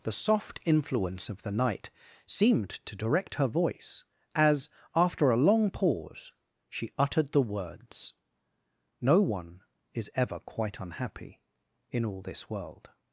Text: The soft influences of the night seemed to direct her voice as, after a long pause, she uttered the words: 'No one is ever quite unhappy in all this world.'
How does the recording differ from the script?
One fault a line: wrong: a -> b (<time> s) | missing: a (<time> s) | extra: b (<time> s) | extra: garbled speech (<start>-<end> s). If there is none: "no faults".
wrong: influences -> influence (0.7 s)